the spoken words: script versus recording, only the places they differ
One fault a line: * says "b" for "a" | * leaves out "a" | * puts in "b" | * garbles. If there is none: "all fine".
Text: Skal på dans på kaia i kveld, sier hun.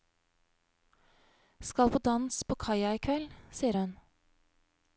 all fine